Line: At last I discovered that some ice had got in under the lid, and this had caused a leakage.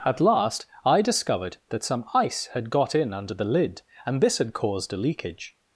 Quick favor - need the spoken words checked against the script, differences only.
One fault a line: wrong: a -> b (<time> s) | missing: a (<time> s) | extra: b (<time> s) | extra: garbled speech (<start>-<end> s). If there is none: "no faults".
no faults